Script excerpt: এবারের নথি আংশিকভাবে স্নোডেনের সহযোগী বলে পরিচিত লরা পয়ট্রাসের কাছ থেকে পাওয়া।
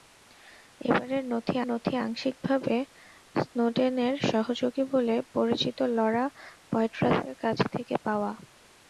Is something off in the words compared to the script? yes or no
yes